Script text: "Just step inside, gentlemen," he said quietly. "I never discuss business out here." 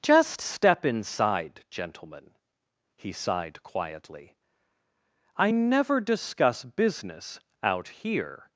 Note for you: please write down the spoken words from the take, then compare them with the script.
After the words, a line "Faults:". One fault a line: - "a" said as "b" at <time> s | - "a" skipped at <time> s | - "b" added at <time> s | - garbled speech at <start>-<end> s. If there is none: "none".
"Just step inside, gentlemen," he sighed quietly. "I never discuss business out here."
Faults:
- "said" said as "sighed" at 3.1 s